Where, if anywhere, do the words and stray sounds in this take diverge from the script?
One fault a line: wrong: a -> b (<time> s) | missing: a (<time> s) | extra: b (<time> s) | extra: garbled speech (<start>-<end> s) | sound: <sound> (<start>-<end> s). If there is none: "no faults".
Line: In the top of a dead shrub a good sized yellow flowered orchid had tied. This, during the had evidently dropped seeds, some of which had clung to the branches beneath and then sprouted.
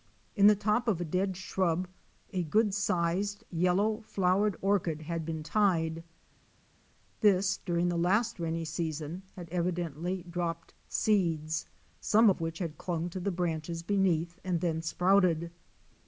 extra: been (5.3 s)
extra: last rainy season (8.0 s)